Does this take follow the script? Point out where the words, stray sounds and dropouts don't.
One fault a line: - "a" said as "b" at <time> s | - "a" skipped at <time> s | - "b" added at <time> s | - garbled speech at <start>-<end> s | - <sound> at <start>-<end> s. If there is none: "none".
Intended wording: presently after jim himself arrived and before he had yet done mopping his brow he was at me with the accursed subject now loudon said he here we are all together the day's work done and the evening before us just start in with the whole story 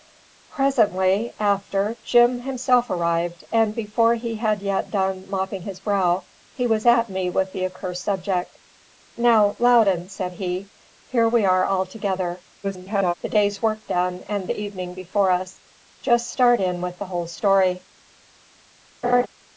- garbled speech at 12.6-13.1 s
- laugh at 19.0-19.3 s